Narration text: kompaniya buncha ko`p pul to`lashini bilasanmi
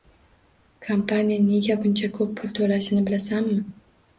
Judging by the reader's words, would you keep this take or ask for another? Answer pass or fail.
fail